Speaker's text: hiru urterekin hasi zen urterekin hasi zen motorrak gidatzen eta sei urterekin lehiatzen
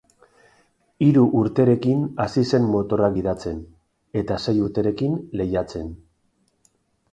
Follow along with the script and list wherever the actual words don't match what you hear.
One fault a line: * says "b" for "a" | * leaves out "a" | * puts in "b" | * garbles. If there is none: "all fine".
* leaves out "urterekin hasi zen"